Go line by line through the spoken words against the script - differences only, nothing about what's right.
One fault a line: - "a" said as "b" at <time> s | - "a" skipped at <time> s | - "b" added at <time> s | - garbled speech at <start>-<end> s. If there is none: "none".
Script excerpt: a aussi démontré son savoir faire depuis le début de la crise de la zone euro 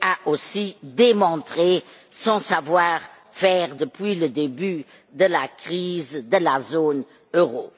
none